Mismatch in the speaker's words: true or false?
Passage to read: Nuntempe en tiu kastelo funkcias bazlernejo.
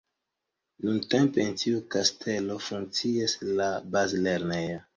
true